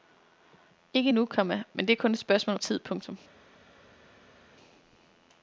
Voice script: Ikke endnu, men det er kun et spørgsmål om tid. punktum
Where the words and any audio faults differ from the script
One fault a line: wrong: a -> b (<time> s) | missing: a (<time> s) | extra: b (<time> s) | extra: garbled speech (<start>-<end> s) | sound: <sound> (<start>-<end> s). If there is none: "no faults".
extra: komma (1.3 s)